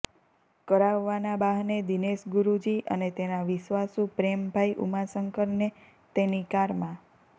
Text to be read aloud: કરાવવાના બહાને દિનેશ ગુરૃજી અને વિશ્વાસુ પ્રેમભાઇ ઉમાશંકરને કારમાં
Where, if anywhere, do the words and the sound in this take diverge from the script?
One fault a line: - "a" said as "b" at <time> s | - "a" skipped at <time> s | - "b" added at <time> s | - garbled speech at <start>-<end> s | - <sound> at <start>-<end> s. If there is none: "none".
- "તેના" added at 3.2 s
- "તેની" added at 6.1 s